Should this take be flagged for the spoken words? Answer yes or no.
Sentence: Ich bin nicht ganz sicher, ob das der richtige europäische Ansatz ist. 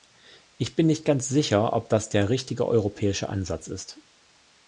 no